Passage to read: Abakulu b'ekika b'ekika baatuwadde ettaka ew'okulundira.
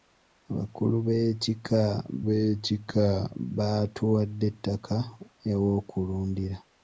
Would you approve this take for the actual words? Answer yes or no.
yes